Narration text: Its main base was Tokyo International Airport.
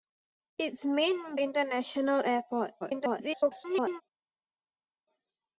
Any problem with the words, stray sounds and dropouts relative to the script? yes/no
yes